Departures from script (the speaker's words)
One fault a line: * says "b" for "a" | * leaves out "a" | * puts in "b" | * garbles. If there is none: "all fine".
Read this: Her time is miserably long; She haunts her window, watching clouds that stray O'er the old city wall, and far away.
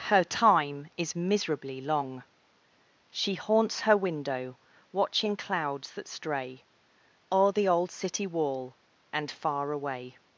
all fine